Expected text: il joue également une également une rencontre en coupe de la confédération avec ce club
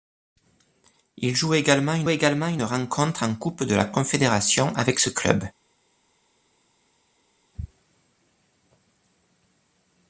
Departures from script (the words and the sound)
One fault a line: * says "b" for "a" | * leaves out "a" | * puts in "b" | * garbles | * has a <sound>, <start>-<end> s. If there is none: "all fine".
all fine